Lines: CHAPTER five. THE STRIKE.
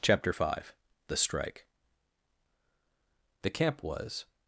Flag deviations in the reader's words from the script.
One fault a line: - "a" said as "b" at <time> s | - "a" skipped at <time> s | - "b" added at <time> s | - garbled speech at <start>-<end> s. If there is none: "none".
- "THE camp was" added at 3.4 s